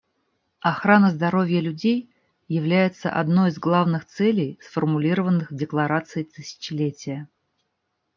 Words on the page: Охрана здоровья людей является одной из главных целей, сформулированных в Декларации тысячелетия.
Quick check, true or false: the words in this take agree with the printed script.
true